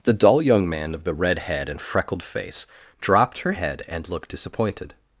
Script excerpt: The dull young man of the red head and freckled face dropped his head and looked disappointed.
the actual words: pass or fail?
fail